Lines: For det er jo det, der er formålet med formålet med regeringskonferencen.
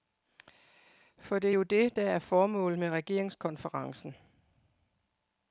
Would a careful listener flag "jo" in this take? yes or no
no